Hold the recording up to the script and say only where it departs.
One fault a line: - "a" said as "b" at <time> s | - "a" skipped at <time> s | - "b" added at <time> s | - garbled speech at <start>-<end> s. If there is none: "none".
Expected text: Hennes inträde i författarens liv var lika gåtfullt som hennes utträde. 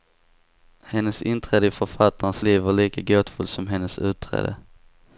none